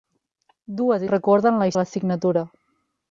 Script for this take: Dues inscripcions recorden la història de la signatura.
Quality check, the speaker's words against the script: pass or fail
fail